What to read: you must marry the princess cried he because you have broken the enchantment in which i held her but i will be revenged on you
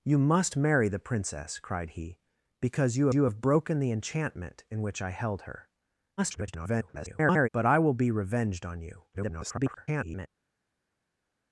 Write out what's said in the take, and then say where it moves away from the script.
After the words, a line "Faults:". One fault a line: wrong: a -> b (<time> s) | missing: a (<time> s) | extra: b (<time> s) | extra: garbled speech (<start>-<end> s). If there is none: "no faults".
you must marry the princess cried he because you you have broken the enchantment in which i held her [garbled] but i will be revenged on you [garbled]
Faults:
extra: you (3.1 s)
extra: garbled speech (6.2-7.5 s)
extra: garbled speech (9.1-10.3 s)